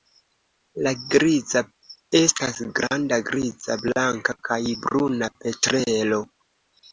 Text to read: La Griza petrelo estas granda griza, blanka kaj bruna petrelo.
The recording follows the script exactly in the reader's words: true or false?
false